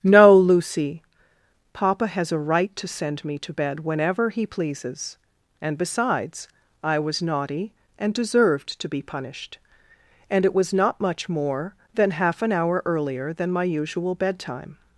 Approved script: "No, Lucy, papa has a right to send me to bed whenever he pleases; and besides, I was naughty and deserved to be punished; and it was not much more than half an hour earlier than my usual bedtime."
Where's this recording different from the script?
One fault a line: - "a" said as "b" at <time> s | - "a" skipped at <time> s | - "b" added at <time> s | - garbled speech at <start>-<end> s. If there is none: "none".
none